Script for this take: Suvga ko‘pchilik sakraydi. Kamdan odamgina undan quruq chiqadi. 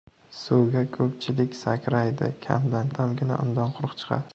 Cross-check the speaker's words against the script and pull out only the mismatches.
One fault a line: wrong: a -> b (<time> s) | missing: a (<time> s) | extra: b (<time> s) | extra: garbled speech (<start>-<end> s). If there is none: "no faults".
no faults